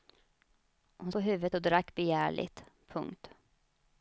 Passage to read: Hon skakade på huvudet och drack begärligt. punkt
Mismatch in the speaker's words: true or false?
true